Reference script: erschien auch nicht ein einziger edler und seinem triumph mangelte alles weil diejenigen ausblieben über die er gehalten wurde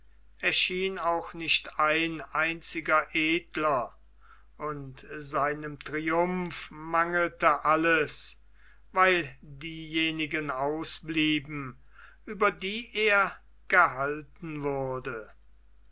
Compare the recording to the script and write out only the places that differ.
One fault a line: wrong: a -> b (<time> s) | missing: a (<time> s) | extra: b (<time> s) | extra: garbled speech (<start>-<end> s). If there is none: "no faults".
no faults